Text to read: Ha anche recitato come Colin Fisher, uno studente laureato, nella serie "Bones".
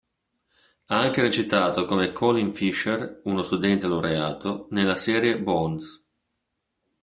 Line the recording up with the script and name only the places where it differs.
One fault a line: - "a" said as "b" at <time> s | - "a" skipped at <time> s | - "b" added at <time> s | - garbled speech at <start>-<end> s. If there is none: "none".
none